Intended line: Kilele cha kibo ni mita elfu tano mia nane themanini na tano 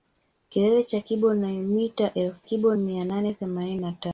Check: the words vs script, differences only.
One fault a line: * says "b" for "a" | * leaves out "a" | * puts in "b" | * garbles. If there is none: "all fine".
* says "kibo" for "tano"